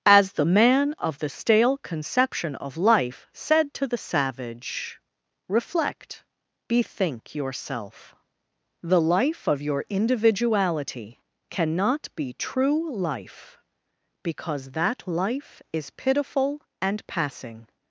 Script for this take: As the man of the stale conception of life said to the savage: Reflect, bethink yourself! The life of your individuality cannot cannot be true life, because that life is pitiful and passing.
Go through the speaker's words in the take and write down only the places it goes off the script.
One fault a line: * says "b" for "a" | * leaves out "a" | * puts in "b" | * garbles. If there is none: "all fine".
* leaves out "cannot"